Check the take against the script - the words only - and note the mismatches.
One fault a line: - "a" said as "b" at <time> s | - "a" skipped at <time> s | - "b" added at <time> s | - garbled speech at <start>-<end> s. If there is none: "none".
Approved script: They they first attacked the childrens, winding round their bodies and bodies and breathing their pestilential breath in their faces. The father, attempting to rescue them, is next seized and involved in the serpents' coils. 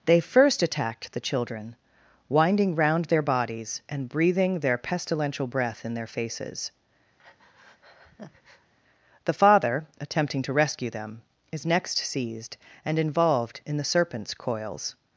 - "they" skipped at 0.2 s
- "childrens" said as "children" at 1.2 s
- "bodies and" skipped at 4.1 s